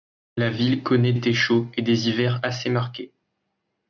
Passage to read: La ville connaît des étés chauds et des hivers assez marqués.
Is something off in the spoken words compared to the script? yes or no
yes